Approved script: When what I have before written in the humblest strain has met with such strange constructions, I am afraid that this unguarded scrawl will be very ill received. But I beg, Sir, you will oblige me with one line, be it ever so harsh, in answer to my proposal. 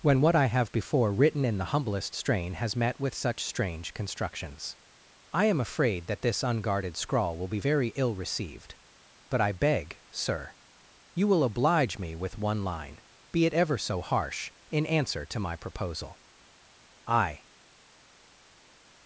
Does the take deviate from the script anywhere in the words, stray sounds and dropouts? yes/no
yes